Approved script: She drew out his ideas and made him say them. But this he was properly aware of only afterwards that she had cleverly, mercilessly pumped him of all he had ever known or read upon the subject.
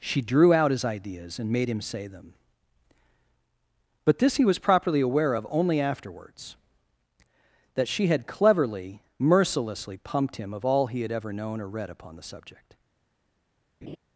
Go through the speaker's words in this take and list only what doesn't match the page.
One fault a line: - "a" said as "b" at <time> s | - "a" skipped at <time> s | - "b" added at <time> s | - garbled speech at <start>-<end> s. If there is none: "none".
none